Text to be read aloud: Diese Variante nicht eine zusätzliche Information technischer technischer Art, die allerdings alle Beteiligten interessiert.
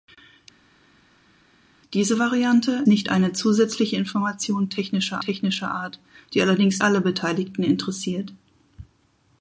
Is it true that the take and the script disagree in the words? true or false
false